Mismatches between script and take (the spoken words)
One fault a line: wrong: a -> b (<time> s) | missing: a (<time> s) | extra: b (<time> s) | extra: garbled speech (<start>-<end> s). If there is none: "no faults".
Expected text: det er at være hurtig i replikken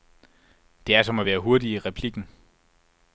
extra: som (1.0 s)